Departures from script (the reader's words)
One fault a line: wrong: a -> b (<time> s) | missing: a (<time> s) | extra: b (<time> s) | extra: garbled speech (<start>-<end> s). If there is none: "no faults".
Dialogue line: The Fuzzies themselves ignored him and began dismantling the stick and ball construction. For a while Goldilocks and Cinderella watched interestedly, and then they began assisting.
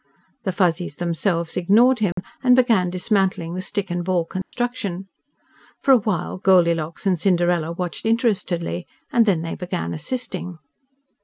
no faults